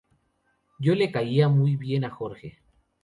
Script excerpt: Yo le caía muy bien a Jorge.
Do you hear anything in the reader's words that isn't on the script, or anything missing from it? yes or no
no